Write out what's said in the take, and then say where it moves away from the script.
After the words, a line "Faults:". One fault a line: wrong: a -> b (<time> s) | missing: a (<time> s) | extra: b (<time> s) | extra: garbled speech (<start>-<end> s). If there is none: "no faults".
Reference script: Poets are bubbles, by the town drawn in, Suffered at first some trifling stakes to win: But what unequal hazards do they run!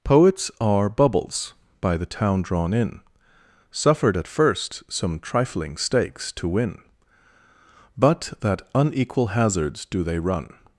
Poets are bubbles, by the town drawn in, Suffered at first some trifling stakes to win: But that unequal hazards do they run!
Faults:
wrong: what -> that (8.4 s)